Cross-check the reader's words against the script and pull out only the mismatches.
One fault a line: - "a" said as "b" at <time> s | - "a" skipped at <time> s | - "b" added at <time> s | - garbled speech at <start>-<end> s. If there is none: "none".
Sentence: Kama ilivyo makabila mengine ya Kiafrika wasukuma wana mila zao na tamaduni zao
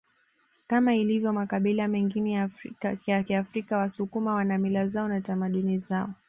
none